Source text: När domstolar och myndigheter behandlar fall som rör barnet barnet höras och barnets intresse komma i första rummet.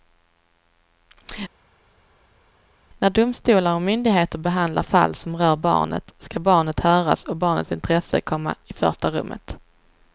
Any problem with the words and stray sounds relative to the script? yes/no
yes